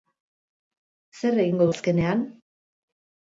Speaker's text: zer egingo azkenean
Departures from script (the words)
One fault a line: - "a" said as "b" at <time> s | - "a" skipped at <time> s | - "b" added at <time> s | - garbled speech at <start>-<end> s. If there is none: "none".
none